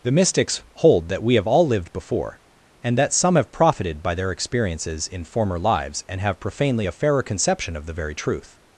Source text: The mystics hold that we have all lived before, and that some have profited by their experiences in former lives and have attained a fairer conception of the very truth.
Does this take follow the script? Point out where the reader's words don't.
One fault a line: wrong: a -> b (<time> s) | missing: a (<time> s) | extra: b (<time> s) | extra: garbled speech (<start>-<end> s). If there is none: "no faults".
wrong: attained -> profanely (6.4 s)